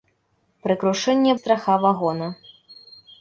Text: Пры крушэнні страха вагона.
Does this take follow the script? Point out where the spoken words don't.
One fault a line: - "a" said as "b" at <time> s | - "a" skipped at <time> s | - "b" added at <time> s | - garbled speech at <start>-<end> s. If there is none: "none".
none